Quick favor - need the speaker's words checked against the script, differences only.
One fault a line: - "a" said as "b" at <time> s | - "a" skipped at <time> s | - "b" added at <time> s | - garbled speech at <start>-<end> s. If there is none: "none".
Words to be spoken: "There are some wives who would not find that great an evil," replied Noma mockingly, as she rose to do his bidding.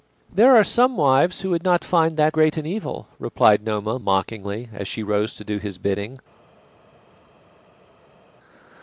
none